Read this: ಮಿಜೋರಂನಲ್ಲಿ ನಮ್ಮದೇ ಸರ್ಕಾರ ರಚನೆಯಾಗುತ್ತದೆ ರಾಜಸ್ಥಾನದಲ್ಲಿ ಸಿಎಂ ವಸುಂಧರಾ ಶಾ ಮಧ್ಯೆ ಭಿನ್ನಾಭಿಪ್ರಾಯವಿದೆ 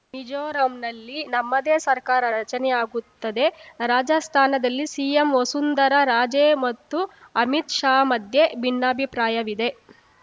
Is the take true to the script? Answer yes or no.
no